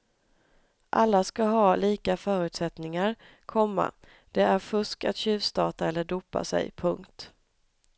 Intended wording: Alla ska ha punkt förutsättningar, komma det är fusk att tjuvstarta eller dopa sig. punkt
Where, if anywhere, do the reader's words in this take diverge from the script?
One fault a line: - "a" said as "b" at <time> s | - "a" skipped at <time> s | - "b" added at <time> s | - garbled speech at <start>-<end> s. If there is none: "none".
- "punkt" said as "lika" at 1.8 s